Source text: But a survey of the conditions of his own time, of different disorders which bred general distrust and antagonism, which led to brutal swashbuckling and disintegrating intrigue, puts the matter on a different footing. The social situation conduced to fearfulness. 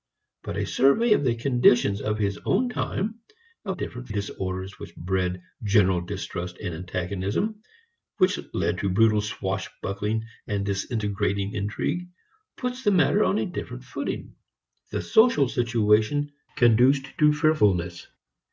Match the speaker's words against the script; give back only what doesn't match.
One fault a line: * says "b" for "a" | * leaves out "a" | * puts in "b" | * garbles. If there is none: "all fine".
all fine